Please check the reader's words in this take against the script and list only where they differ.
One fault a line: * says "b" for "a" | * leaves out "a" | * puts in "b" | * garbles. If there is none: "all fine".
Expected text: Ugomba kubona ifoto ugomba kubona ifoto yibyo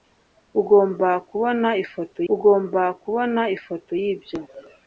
all fine